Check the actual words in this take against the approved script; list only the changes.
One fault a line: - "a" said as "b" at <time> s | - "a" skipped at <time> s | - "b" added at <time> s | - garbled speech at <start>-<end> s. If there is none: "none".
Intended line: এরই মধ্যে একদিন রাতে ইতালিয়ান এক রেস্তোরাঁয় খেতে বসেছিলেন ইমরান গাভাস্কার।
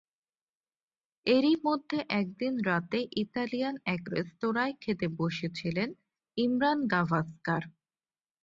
none